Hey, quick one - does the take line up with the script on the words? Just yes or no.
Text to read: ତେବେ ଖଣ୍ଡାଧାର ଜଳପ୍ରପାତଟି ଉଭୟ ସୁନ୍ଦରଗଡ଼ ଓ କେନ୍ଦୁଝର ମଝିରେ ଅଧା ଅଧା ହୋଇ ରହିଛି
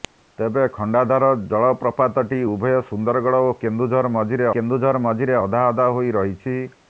no